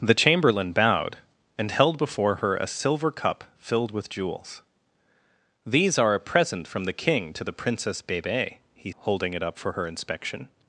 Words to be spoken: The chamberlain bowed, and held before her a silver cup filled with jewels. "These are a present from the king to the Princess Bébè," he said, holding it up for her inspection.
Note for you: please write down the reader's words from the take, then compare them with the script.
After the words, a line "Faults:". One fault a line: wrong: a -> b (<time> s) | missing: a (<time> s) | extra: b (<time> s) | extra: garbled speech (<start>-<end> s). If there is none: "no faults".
The chamberlain bowed, and held before her a silver cup filled with jewels. "These are a present from the king to the Princess Bébè," he holding it up for her inspection.
Faults:
missing: said (8.9 s)